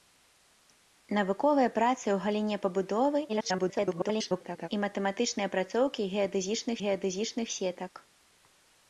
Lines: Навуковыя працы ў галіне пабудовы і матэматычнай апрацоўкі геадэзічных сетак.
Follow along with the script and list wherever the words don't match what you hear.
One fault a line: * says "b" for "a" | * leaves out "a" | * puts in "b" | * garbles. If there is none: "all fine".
* garbles
* puts in "геадэзічных"